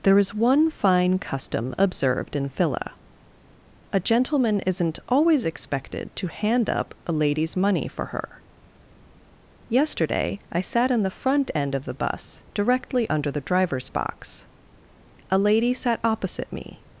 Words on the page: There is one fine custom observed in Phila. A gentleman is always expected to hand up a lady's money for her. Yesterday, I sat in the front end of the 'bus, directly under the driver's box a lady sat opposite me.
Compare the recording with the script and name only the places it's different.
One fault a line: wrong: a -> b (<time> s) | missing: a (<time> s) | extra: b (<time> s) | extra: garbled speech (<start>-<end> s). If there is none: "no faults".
wrong: is -> isn't (4.6 s)